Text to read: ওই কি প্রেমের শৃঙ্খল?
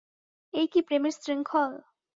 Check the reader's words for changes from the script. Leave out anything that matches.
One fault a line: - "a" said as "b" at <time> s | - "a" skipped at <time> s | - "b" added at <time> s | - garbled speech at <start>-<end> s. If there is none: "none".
- "ওই" said as "এই" at 0.5 s